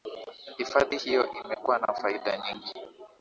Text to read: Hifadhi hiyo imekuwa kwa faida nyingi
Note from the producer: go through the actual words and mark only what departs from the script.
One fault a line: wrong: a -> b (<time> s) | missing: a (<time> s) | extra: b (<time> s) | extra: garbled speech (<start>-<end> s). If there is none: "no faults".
wrong: kwa -> na (1.8 s)